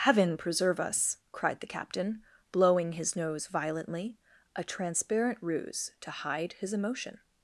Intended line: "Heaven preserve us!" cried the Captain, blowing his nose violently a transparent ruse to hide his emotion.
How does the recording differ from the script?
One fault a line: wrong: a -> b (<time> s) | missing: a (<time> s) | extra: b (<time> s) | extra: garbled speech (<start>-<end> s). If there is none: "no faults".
no faults